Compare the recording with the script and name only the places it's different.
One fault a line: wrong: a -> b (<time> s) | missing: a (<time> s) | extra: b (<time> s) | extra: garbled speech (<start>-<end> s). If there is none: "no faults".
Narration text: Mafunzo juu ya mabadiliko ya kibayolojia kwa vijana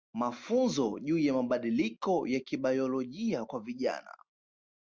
no faults